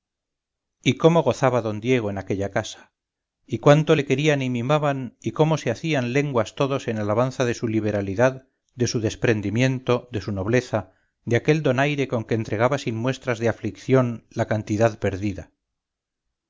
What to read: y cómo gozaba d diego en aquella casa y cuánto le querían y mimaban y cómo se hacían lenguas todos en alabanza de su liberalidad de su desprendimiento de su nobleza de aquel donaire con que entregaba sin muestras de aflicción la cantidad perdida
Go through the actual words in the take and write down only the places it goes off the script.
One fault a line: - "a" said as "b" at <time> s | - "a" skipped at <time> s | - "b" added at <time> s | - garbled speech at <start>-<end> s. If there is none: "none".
none